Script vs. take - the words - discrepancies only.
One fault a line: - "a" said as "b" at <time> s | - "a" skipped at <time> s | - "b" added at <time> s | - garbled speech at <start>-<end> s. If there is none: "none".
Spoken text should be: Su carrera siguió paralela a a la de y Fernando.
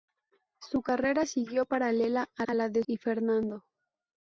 none